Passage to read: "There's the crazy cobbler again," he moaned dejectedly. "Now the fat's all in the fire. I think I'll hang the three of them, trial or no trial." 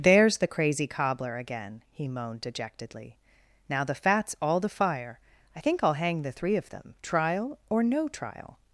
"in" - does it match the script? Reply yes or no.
no